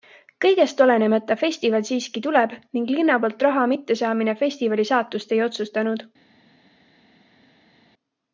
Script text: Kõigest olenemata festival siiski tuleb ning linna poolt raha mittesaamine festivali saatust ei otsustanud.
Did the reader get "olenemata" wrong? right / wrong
right